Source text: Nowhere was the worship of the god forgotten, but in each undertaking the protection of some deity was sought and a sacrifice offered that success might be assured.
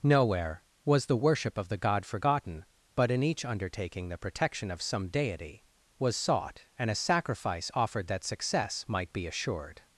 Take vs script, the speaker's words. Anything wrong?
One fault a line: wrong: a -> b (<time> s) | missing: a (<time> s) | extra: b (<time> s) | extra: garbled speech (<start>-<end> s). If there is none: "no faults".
no faults